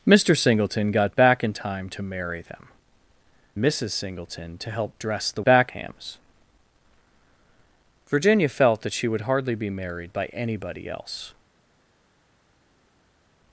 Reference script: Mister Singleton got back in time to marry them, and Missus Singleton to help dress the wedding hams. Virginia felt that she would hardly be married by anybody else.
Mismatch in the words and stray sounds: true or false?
true